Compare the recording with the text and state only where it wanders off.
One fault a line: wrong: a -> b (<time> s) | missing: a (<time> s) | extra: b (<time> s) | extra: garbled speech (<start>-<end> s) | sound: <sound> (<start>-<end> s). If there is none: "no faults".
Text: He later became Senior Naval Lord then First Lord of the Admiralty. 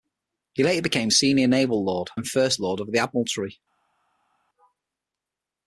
no faults